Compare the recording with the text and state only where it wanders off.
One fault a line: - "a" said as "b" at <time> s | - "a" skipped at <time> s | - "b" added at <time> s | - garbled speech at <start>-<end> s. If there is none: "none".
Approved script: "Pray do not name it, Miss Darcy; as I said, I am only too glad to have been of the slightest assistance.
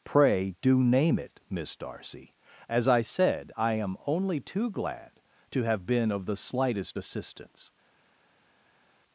- "not" skipped at 0.8 s